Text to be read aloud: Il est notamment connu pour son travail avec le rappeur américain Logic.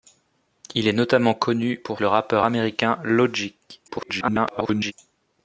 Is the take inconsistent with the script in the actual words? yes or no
yes